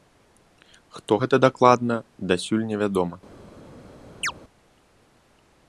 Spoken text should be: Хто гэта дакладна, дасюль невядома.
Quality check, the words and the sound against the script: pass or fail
fail